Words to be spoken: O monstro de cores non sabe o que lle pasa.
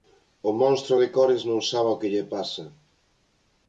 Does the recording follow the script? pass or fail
pass